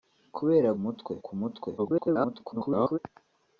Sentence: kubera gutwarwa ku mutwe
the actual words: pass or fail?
fail